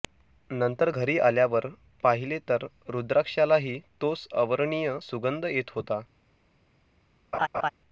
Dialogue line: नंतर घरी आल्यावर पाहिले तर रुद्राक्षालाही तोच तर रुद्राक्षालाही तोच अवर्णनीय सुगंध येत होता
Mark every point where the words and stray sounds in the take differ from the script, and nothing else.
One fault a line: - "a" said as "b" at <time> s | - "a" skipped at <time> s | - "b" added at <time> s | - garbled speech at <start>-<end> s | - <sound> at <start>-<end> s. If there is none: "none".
- "तर रुद्राक्षालाही तोच" skipped at 4.3 s
- laugh at 7.3-7.7 s